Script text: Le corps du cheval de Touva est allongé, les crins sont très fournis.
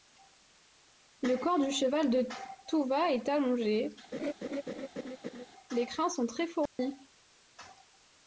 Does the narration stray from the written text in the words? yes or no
no